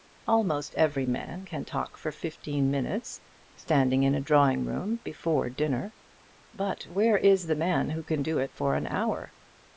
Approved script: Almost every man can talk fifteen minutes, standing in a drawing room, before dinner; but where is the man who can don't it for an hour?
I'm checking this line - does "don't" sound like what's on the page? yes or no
no